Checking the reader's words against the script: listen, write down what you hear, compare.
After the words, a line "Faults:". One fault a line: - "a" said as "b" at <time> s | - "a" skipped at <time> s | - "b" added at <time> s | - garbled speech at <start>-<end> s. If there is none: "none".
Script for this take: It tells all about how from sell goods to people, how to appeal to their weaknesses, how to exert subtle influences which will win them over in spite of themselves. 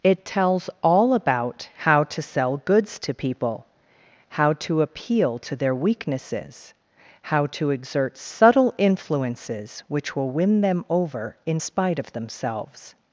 It tells all about how to sell goods to people, how to appeal to their weaknesses, how to exert subtle influences which will win them over in spite of themselves.
Faults:
- "from" said as "to" at 2.0 s